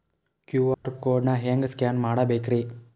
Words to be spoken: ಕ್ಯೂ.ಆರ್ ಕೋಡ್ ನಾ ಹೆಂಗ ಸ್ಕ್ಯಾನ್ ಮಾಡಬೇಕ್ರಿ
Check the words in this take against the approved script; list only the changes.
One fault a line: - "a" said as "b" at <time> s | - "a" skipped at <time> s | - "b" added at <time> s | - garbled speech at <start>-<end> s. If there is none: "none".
none